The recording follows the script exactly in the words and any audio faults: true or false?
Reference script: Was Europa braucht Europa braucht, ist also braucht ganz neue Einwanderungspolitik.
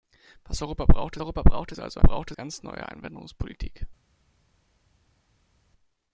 true